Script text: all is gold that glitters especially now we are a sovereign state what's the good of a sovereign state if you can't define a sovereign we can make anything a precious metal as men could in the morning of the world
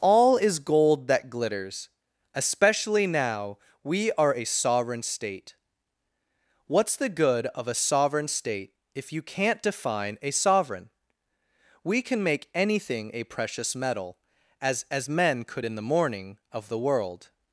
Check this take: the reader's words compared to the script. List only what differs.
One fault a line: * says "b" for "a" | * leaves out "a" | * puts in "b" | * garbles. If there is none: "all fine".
* puts in "as"